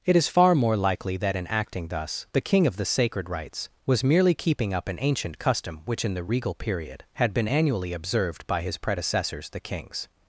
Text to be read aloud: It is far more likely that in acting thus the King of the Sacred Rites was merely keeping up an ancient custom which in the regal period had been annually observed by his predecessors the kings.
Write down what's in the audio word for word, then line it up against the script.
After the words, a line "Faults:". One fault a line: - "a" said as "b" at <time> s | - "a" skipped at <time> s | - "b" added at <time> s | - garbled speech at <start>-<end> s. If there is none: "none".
It is far more likely that in acting thus the King of the Sacred Rites was merely keeping up an ancient custom which in the regal period had been annually observed by his predecessors the kings.
Faults:
none